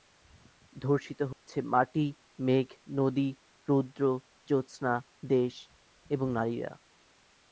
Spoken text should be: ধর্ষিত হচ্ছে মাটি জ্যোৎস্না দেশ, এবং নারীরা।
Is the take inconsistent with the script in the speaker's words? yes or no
yes